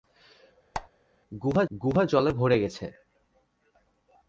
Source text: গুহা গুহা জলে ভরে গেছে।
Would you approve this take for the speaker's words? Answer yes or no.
yes